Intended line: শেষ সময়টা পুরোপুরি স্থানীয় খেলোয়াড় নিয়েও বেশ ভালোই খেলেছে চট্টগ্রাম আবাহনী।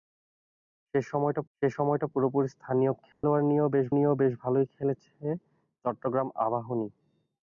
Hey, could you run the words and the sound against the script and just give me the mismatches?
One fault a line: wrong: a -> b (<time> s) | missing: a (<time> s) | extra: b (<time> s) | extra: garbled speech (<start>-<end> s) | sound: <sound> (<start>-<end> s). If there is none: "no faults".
extra: শেষ সময়টা (1.6 s)
sound: dropout (3.1-3.2 s)
extra: নিয়েও বেশ (3.9 s)